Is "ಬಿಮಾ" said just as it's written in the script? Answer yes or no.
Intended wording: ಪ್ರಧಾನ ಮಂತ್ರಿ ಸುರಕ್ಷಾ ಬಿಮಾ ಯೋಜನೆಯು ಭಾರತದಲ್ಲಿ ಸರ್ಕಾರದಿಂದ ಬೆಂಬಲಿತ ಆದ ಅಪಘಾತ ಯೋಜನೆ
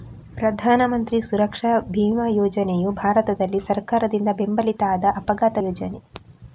yes